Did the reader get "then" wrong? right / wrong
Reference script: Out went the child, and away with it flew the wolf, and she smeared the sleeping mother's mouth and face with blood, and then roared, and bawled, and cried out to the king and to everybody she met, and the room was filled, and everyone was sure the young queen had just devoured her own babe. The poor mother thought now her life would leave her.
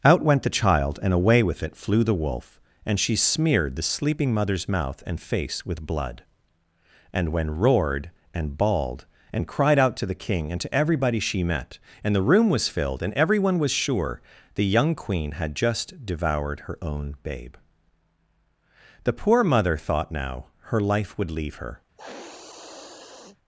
wrong